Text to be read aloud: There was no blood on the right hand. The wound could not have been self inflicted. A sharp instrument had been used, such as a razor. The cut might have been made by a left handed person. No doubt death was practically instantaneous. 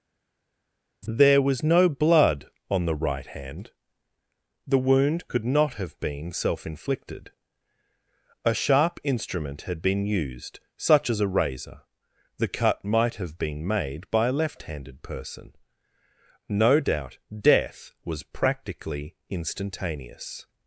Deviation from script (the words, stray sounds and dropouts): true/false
false